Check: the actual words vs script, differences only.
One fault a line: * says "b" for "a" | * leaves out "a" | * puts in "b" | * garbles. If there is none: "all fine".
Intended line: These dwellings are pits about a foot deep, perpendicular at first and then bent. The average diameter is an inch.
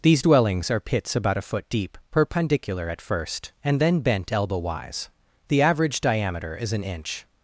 * puts in "elbow wise"